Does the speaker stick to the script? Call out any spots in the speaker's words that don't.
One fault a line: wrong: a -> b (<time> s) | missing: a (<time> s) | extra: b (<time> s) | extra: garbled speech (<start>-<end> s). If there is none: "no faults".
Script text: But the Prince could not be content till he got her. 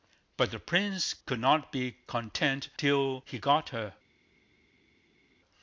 no faults